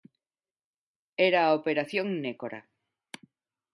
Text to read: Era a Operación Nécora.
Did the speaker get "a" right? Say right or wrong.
right